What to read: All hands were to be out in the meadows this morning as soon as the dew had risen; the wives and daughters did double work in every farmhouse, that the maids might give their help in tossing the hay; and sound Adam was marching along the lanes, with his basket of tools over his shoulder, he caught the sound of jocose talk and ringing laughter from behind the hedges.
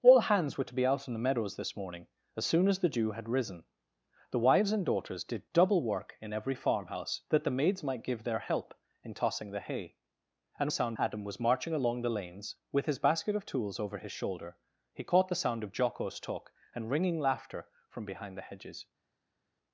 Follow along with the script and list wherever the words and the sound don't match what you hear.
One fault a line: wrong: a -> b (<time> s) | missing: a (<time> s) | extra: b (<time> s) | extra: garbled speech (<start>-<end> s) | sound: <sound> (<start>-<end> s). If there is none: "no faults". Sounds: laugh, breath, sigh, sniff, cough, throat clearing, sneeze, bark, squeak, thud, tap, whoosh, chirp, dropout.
no faults